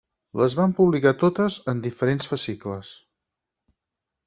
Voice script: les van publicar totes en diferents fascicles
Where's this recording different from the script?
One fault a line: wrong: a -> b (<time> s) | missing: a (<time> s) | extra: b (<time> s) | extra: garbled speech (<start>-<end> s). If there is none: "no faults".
no faults